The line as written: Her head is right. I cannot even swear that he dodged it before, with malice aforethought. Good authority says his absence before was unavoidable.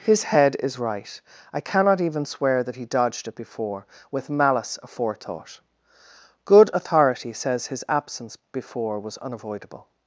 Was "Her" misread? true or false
true